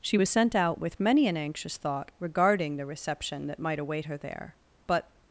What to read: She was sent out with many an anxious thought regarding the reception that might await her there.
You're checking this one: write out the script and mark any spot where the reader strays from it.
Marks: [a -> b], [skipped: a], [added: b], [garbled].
She was sent out with many an anxious thought regarding the reception that might await her there. [added: But]